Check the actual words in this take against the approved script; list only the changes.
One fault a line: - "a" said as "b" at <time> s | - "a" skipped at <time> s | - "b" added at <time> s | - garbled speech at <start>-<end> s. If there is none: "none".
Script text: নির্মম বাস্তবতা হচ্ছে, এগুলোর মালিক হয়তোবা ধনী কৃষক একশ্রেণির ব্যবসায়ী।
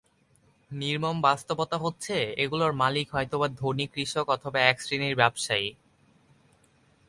- "অথবা" added at 4.3 s